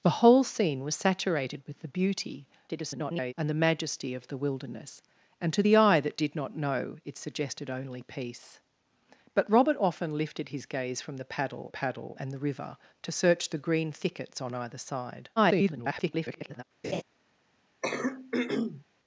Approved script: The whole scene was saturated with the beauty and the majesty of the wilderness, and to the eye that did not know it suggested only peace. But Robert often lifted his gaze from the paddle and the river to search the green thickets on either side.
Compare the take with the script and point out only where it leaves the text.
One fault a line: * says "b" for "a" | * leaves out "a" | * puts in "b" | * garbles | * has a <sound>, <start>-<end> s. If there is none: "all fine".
* garbles
* puts in "paddle"
* garbles
* has a laugh, 16.8-17.0 s
* has a throat clearing, 17.8-18.8 s